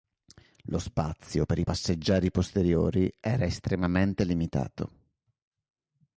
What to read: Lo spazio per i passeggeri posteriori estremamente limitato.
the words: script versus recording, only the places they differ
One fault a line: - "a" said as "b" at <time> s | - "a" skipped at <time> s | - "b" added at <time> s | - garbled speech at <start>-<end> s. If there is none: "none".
- "era" added at 3.2 s